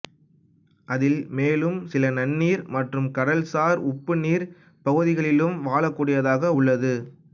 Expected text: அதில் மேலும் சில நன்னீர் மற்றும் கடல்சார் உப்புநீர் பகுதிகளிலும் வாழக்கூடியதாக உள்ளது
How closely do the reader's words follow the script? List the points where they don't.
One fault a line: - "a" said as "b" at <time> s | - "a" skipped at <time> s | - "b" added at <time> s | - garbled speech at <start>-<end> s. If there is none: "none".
none